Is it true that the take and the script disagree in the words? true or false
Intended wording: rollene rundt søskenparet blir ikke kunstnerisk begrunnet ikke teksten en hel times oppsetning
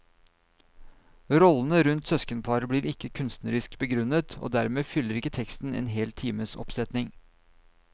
true